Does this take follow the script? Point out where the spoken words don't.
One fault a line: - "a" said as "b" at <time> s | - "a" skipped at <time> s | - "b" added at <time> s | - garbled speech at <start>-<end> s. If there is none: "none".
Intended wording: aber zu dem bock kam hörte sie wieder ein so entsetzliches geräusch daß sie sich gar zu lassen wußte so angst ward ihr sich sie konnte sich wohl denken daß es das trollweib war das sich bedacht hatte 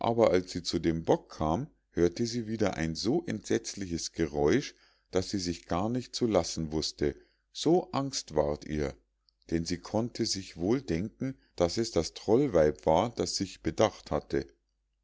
- "als sie" added at 0.3 s
- "nicht" added at 5.9 s
- "sich" said as "denn" at 9.5 s